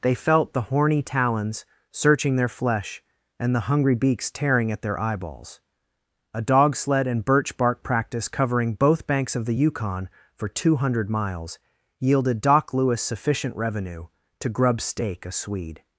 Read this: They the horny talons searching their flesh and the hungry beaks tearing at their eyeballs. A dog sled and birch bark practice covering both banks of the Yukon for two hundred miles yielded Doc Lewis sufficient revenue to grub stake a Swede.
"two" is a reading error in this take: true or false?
false